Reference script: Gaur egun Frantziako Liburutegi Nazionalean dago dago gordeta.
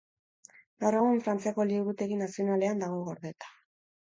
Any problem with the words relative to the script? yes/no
yes